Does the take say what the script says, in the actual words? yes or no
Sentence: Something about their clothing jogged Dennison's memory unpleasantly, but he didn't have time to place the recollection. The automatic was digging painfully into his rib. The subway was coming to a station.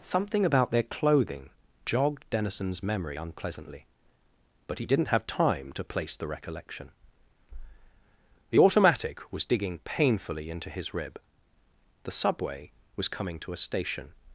yes